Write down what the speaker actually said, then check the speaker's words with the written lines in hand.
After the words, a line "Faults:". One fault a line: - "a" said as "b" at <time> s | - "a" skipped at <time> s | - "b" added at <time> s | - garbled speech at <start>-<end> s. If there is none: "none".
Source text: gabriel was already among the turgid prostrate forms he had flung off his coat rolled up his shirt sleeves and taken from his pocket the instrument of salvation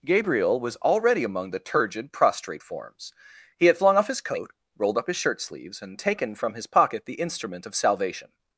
gabriel was already among the turgid prostrate forms he had flung off his coat rolled up his shirt sleeves and taken from his pocket the instrument of salvation
Faults:
none